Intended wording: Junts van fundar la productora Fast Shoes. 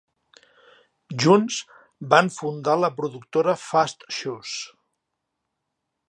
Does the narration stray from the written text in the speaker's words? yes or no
no